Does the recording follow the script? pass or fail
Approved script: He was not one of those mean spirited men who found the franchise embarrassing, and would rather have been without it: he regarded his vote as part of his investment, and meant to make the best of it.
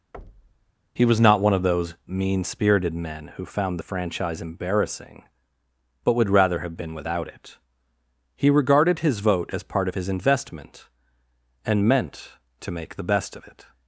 fail